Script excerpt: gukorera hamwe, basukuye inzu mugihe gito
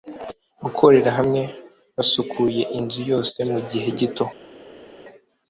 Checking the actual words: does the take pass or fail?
fail